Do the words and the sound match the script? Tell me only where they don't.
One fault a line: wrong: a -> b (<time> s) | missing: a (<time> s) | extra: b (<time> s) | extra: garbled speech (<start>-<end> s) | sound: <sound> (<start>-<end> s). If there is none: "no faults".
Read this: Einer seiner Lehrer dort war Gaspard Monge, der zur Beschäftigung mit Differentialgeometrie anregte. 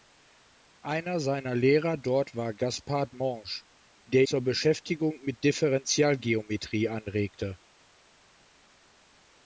no faults